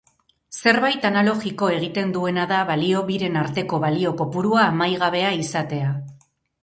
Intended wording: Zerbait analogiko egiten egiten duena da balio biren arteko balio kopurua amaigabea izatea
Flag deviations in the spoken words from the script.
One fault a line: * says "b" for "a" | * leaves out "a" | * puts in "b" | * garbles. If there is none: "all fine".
* leaves out "egiten"